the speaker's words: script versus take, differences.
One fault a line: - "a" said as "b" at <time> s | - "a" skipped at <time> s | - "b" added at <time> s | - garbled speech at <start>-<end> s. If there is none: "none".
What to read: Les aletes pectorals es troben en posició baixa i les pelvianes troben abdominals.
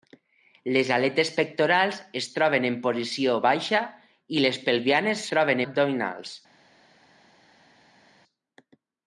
none